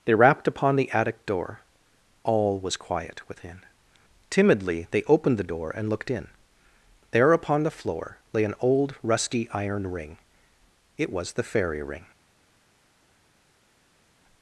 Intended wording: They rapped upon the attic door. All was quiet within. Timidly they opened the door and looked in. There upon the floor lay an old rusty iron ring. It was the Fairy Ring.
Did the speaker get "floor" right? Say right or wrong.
right